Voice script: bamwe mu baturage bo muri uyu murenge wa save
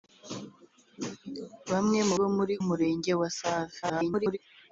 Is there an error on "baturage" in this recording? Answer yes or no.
yes